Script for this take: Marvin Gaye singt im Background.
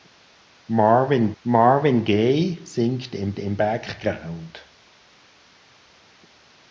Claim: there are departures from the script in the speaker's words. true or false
true